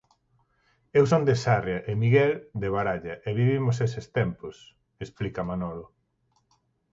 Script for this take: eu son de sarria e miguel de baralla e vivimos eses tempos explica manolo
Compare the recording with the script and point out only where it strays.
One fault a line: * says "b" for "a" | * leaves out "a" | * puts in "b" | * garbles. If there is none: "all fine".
all fine